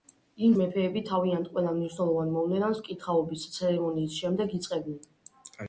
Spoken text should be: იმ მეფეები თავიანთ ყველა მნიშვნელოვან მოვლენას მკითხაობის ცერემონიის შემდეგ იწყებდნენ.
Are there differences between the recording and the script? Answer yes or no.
no